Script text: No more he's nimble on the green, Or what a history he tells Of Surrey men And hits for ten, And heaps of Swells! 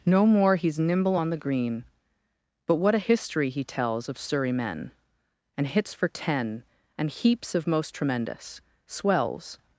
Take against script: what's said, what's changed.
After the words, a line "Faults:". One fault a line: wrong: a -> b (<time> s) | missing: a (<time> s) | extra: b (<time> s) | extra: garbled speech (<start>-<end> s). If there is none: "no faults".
No more he's nimble on the green, But what a history he tells Of Surrey men And hits for ten, And heaps of most tremendous Swells!
Faults:
wrong: Or -> But (2.7 s)
extra: most tremendous (7.7 s)